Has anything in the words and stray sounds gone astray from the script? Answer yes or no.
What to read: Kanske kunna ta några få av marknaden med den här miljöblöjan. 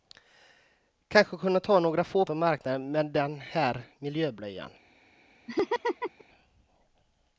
yes